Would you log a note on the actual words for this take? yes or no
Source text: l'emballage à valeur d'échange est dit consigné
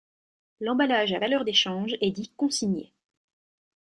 no